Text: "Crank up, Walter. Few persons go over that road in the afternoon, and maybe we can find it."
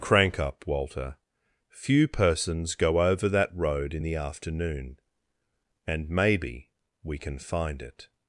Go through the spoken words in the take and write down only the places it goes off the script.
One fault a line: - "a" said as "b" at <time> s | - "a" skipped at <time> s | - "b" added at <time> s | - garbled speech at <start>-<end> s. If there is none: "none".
none